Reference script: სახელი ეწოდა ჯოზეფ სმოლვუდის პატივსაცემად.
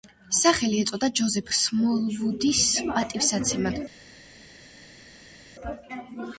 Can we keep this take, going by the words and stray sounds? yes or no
yes